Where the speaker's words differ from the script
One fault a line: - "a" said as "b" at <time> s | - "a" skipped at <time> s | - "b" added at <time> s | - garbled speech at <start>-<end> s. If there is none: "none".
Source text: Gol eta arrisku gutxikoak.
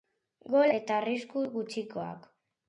none